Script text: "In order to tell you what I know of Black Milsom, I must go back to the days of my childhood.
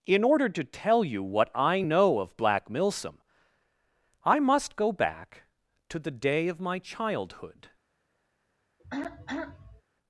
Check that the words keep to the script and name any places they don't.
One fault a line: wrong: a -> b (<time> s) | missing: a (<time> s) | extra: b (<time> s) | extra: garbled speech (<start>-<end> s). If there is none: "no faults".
wrong: days -> day (6.1 s)